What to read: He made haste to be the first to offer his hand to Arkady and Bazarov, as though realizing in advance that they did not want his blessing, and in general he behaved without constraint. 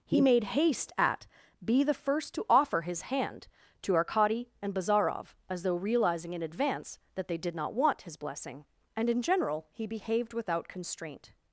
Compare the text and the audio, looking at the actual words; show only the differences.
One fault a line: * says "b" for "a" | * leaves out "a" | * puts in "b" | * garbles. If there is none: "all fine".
* says "at" for "to"